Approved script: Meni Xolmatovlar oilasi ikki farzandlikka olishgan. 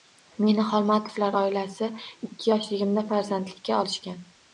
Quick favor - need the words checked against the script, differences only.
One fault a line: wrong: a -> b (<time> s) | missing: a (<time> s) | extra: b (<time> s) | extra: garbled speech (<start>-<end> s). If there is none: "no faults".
extra: yoshligimda (2.5 s)